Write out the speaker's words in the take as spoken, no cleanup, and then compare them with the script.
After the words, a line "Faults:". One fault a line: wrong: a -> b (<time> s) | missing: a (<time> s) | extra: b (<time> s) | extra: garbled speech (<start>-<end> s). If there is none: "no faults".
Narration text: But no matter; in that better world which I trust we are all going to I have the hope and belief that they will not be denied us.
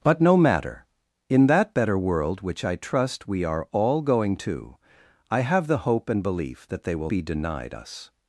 But no matter; in that better world which I trust we are all going to I have the hope and belief that they will be denied us.
Faults:
missing: not (7.1 s)